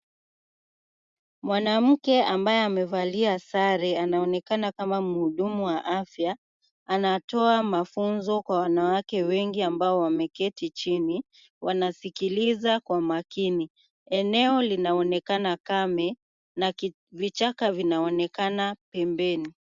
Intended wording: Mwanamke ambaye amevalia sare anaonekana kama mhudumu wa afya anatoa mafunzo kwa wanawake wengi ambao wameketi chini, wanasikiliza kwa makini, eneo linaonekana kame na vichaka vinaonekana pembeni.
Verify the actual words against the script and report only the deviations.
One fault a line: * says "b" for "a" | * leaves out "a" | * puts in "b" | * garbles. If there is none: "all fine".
all fine